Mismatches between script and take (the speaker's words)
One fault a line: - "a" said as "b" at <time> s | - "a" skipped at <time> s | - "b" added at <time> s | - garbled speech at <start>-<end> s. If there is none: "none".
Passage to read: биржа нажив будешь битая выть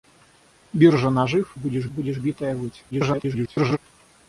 - "будешь" added at 1.9 s
- garbled speech at 2.9-3.8 s